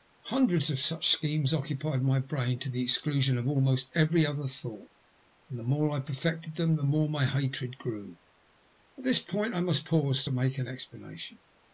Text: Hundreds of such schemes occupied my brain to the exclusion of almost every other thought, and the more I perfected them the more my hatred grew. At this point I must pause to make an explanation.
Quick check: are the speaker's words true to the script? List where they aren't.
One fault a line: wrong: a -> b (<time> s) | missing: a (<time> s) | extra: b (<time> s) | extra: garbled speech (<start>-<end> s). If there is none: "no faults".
no faults